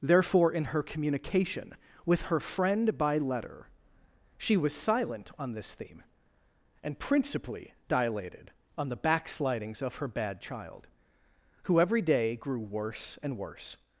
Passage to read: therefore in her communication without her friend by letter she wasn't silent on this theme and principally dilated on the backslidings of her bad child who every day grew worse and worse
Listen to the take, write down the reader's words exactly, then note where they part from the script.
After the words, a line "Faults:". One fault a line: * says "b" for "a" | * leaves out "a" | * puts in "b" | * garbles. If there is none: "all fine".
therefore in her communication with her friend by letter she was silent on this theme and principally dilated on the backslidings of her bad child who every day grew worse and worse
Faults:
* says "with" for "without"
* says "was" for "wasn't"